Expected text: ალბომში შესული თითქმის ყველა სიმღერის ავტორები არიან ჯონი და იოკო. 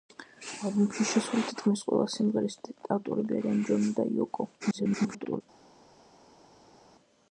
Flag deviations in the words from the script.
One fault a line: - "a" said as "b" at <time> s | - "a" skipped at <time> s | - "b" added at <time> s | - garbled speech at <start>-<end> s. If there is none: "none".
- garbled speech at 4.6-5.4 s